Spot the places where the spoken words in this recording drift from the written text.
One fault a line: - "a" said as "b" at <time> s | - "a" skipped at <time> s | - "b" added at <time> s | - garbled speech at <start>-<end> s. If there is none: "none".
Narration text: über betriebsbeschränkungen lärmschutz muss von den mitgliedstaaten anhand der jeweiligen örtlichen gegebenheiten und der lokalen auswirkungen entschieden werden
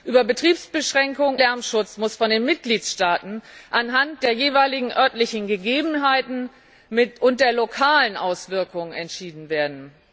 none